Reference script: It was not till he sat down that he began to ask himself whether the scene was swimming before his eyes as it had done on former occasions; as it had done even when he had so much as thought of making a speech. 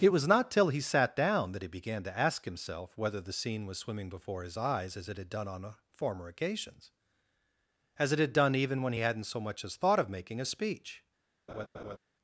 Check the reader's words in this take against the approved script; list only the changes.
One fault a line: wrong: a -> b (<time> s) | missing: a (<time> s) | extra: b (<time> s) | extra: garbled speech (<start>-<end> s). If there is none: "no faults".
wrong: had -> hadn't (9.0 s)